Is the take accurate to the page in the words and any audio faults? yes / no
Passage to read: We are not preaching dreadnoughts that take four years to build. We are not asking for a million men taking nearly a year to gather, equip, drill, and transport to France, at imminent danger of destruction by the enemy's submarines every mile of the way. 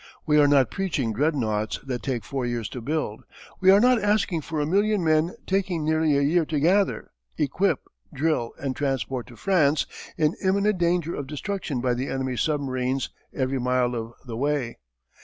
no